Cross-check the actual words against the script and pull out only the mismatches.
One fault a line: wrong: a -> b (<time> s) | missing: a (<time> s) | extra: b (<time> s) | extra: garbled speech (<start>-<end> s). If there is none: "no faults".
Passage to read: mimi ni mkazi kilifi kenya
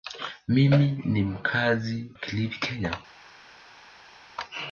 no faults